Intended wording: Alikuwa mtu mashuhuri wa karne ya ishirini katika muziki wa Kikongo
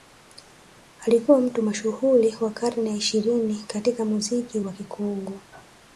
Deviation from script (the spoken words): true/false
false